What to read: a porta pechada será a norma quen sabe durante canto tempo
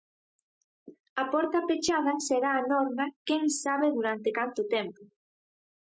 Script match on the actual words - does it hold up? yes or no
yes